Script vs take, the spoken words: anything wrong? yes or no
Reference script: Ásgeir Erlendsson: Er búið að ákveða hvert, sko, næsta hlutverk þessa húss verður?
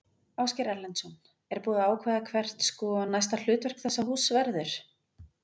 no